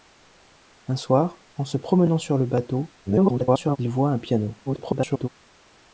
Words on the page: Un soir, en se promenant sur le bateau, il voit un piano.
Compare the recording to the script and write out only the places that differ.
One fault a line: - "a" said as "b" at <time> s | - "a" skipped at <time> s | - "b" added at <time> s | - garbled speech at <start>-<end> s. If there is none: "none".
- garbled speech at 3.1-3.8 s
- garbled speech at 4.7-5.3 s